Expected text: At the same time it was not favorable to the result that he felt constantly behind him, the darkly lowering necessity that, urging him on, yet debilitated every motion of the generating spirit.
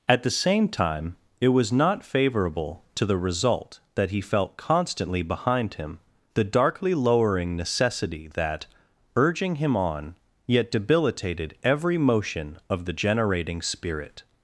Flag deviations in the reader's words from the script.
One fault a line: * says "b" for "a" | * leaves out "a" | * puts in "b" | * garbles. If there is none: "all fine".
all fine